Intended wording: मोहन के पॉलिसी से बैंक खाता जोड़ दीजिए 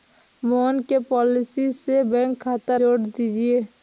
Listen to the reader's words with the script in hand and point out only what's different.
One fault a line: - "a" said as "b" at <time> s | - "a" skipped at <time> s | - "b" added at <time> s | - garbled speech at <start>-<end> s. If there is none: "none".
none